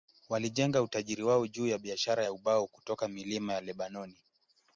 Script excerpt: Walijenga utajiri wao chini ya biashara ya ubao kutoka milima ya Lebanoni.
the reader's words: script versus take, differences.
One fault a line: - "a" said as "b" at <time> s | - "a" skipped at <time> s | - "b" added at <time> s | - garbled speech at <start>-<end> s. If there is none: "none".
- "chini" said as "juu" at 1.5 s